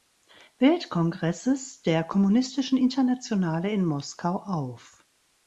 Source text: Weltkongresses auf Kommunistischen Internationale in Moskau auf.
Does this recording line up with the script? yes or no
no